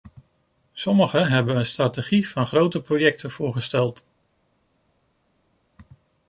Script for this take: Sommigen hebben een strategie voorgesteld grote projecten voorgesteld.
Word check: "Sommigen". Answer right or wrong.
right